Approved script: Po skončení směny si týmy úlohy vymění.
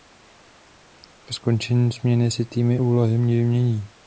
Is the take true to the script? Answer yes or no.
yes